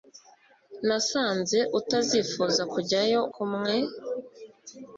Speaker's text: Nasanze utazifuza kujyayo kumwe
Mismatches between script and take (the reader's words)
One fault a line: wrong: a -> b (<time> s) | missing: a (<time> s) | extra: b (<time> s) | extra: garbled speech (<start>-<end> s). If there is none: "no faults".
no faults